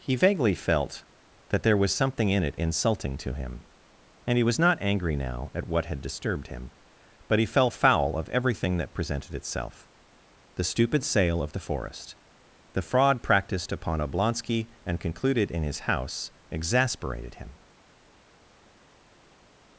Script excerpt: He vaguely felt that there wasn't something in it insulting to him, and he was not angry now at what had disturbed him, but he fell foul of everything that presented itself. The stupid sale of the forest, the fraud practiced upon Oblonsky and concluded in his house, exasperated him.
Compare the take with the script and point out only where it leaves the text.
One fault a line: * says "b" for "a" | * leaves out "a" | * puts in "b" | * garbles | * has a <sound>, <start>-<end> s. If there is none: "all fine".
* says "was" for "wasn't"